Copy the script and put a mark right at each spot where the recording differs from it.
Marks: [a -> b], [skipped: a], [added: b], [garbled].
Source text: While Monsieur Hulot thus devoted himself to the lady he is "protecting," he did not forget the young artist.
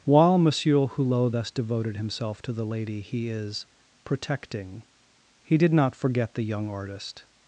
While Monsieur Hulot thus devoted himself to the lady he is "protecting," he did not forget the young artist.